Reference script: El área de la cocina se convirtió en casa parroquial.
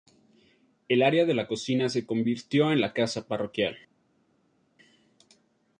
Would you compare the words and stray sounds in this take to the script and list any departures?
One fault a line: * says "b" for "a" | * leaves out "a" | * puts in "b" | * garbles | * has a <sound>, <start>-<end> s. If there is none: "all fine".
* puts in "la"